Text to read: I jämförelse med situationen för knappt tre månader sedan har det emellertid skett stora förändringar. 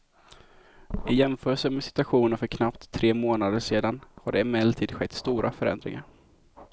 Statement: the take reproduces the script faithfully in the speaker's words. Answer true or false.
true